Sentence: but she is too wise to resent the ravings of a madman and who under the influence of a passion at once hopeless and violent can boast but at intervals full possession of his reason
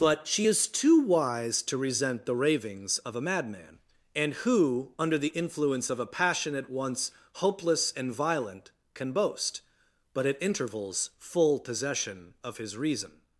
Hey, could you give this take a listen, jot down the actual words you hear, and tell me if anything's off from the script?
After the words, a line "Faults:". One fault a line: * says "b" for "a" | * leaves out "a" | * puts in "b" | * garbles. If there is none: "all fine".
but she is too wise to resent the ravings of a madman and who under the influence of a passion at once hopeless and violent can boast but at intervals full possession of his reason
Faults:
all fine